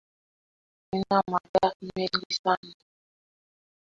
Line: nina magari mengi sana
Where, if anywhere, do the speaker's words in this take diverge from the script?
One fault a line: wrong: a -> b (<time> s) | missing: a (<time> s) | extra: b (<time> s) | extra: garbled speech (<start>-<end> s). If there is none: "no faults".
no faults